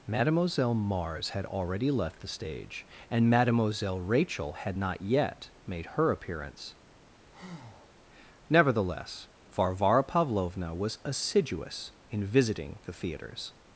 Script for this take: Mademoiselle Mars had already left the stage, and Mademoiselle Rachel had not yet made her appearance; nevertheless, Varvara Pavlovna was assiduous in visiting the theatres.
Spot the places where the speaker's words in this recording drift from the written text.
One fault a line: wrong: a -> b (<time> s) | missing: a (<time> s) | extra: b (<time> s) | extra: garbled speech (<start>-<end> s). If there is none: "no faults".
no faults